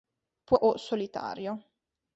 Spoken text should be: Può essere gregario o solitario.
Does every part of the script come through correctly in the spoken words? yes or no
no